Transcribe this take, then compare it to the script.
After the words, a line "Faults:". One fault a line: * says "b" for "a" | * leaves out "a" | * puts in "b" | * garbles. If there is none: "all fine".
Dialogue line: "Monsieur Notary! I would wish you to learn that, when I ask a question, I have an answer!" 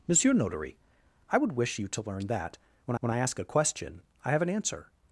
"Monsieur Notary! I would wish you to learn that, when when I ask a question, I have an answer!"
Faults:
* puts in "when"